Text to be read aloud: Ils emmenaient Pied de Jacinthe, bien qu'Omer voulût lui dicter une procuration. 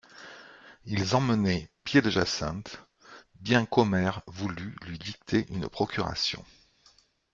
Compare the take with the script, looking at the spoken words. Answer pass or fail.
pass